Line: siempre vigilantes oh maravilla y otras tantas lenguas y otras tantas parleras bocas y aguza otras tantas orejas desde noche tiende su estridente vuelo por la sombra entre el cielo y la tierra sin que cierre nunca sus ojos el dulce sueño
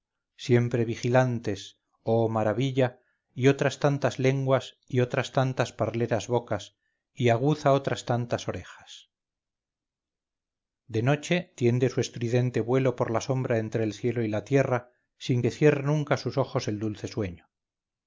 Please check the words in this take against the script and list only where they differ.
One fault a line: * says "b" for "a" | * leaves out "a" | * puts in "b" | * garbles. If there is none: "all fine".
* says "de" for "desde"